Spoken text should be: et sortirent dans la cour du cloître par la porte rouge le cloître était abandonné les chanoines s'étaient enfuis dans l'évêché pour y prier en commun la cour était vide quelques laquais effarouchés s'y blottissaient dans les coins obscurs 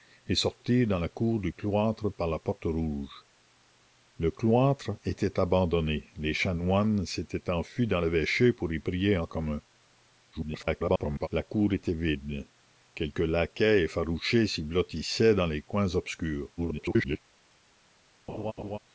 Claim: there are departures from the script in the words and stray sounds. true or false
true